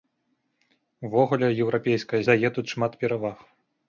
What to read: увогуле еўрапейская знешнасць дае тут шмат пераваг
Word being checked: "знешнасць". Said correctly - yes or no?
no